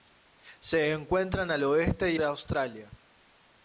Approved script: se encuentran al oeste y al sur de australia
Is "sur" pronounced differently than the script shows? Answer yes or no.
yes